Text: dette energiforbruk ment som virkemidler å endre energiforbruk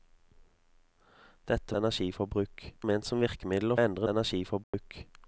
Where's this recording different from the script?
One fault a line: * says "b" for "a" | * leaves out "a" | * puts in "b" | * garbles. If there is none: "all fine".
all fine